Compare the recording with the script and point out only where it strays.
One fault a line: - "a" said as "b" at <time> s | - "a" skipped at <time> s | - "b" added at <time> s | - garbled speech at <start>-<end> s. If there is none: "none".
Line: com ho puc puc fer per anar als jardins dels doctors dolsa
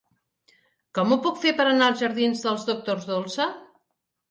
- "puc" skipped at 1.4 s